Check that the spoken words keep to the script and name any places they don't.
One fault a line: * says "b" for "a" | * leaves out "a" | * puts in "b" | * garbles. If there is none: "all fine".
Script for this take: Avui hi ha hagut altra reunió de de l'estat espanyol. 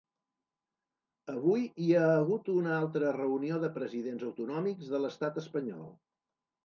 * puts in "una"
* puts in "presidents autonòmics"